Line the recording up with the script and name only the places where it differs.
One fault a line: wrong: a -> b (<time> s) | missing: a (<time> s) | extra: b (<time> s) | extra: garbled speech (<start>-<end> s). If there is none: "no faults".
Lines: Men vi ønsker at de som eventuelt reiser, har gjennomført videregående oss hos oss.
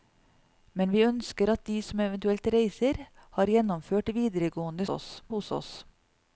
no faults